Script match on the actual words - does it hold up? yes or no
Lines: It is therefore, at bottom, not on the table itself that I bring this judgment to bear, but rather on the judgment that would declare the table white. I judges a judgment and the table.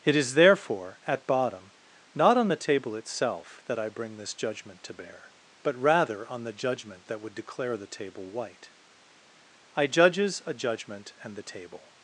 yes